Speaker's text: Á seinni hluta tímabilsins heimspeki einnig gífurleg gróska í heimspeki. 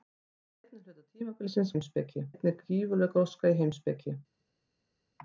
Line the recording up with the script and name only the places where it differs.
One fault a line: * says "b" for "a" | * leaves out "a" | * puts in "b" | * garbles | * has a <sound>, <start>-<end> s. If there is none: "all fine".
all fine